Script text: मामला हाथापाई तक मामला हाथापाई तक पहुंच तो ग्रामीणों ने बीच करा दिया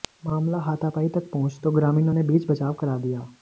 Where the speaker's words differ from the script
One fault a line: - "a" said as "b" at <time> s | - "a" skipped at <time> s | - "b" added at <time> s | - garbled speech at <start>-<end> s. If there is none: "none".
- "मामला हाथापाई तक" skipped at 1.3 s
- "बचाव" added at 2.5 s